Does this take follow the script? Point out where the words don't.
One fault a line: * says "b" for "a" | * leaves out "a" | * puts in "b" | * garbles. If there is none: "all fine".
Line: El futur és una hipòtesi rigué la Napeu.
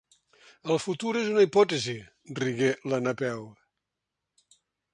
all fine